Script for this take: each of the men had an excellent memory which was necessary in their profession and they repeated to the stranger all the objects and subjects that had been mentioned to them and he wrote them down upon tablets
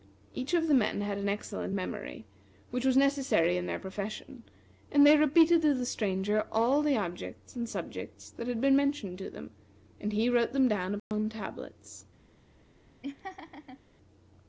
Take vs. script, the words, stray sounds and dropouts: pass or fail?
fail